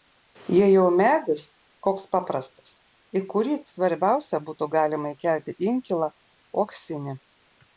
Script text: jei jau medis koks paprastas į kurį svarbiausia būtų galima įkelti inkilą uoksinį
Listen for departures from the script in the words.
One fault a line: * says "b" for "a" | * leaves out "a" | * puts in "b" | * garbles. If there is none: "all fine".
all fine